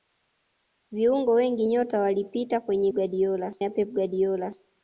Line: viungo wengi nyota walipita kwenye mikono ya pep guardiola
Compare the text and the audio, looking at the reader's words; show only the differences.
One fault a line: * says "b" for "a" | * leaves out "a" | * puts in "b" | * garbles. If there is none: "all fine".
* says "guardiola" for "mikono"